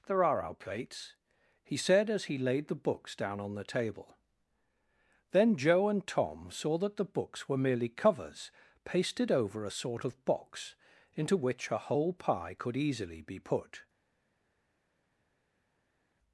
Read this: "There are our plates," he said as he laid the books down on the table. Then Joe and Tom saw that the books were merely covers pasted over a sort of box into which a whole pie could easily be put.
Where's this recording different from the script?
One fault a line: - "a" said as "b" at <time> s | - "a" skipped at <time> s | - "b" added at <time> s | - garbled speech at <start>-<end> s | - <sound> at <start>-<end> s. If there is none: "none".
none